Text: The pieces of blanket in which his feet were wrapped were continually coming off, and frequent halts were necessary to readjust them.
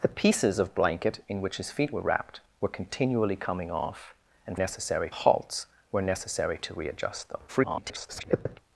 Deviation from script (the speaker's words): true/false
true